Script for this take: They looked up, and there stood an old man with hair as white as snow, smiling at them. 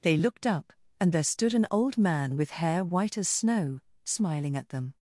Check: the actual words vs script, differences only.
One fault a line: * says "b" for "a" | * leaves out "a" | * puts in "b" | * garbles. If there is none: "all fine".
* leaves out "as"